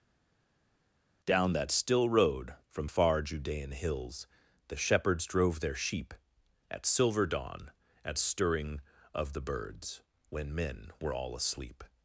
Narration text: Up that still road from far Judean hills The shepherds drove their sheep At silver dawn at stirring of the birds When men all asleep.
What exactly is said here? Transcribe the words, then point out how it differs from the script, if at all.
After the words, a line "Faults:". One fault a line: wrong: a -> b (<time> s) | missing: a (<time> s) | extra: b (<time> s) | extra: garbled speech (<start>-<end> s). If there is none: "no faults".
Down that still road from far Judean hills The shepherds drove their sheep At silver dawn at stirring of the birds When men were all asleep.
Faults:
wrong: Up -> Down (1.2 s)
extra: were (11.0 s)